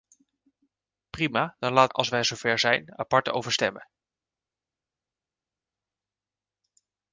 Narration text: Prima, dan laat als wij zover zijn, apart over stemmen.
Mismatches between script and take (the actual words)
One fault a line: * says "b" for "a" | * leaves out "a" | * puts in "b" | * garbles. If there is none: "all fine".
all fine